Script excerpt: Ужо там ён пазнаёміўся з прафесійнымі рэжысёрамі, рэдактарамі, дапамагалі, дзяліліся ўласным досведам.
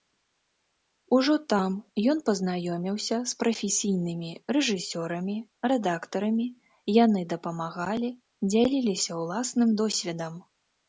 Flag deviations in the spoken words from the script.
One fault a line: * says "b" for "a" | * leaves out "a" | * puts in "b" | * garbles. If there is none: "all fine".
* puts in "яны"